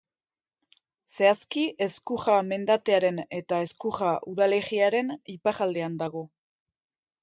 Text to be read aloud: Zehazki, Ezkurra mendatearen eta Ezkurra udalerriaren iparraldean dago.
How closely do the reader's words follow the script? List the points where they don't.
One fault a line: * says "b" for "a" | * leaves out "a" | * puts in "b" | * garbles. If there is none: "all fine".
all fine